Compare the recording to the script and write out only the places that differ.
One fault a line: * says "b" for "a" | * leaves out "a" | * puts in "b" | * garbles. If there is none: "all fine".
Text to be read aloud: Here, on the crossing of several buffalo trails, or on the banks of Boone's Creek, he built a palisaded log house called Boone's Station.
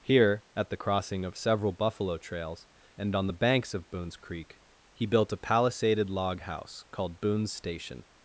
* says "at" for "on"
* says "and" for "or"